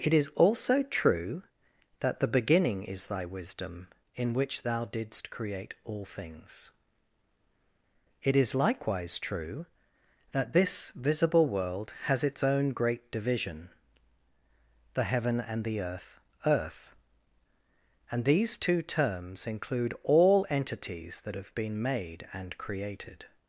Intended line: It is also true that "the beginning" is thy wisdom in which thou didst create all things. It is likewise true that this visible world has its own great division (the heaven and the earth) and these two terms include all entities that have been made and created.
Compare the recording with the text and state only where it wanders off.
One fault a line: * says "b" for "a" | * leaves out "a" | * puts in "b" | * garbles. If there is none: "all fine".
* puts in "earth"